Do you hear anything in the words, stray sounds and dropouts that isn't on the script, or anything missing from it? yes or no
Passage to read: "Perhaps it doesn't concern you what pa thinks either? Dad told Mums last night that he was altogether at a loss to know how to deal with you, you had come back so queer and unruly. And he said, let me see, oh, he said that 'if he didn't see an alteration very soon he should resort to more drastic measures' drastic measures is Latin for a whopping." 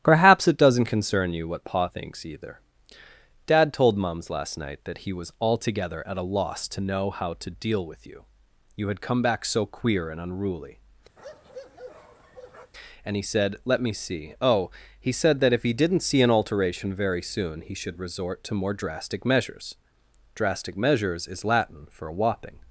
yes